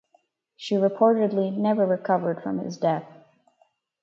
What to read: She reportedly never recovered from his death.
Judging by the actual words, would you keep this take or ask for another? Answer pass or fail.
pass